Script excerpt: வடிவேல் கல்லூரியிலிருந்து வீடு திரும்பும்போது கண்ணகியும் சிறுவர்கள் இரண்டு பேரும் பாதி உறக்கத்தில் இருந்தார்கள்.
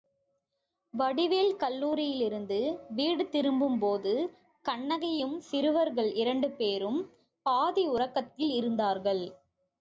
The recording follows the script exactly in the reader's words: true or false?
true